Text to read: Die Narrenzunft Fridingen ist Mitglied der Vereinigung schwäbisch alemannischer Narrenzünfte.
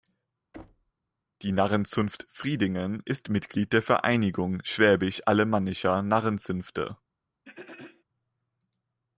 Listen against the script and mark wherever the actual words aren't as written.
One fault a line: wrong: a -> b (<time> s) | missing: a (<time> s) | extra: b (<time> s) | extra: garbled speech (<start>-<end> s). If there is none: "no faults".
no faults